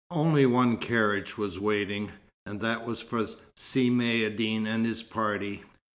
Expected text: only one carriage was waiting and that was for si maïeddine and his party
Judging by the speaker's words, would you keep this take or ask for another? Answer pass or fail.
pass